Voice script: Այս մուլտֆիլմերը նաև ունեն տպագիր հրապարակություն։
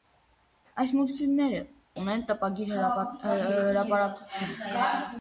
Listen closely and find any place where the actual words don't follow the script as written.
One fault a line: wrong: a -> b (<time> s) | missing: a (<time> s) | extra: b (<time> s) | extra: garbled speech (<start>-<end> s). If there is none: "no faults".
missing: նաև (1.6 s)